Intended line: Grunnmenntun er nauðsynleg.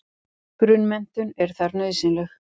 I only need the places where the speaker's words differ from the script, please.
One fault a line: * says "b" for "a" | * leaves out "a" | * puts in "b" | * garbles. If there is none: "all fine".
* puts in "þar"